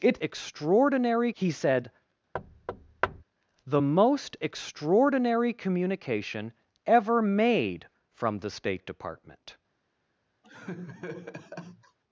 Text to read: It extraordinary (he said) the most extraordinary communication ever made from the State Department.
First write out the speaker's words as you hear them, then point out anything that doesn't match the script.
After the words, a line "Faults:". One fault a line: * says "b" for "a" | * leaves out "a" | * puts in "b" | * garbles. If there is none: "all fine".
It extraordinary (he said) the most extraordinary communication ever made from the State Department.
Faults:
all fine